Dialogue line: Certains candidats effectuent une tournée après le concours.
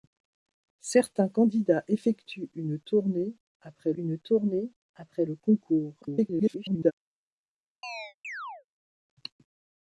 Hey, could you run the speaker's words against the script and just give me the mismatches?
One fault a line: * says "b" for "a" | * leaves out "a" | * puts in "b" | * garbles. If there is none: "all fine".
* puts in "une tournée après"
* garbles